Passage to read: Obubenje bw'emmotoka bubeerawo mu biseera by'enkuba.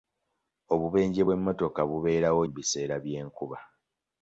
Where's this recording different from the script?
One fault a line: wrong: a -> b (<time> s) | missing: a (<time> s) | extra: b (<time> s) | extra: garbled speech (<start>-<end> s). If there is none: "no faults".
no faults